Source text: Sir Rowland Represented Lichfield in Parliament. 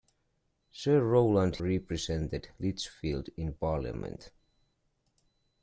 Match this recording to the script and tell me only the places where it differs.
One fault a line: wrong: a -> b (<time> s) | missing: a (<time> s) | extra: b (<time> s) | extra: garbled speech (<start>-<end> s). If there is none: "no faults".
no faults